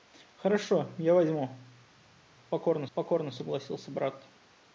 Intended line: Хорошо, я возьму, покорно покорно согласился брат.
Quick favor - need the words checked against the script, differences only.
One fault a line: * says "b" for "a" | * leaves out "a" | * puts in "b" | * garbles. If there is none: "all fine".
all fine